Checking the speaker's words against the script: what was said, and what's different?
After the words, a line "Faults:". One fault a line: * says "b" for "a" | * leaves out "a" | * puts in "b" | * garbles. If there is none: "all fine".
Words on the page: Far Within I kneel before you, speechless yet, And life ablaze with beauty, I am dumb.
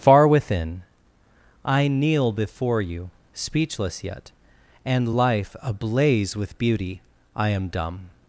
Far Within I kneel before you, speechless yet, And life ablaze with beauty, I am dumb.
Faults:
all fine